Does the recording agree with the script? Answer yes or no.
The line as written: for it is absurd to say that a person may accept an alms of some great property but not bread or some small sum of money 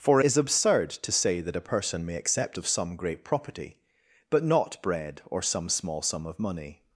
no